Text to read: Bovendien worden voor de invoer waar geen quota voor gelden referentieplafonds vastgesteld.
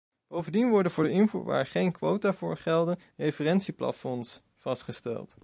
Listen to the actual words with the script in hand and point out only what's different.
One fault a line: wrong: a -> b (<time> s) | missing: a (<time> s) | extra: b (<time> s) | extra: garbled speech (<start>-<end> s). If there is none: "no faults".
no faults